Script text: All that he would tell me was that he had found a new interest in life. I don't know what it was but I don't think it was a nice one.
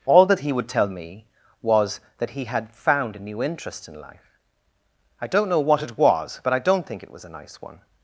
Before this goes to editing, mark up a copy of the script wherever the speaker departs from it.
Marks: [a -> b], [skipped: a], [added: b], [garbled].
All that he would tell me was that he had found a new interest in life. I don't know what it was but I don't think it was a nice one.